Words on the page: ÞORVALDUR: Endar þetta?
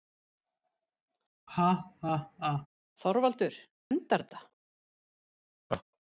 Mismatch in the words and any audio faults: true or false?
true